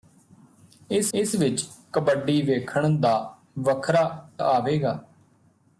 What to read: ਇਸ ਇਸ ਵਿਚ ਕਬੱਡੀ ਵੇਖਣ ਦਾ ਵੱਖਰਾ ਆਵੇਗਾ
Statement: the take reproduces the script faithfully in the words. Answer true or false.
true